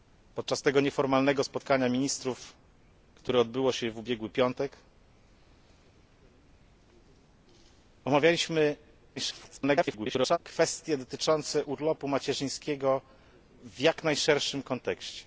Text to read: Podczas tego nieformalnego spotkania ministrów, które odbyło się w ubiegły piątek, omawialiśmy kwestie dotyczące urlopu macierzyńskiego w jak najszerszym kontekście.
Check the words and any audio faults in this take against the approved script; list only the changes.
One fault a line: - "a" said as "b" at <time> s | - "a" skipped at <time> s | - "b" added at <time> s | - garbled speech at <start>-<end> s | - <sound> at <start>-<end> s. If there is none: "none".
- garbled speech at 9.2-10.4 s